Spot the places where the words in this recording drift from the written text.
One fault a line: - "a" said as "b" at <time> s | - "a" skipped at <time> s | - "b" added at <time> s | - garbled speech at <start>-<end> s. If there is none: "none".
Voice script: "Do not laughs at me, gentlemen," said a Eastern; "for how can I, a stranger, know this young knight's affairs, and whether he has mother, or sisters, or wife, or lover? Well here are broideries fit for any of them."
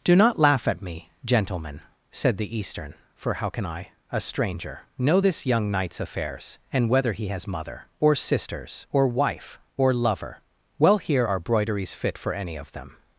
- "laughs" said as "laugh" at 0.4 s
- "a" said as "the" at 2.4 s